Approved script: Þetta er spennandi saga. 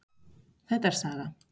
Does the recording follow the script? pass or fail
fail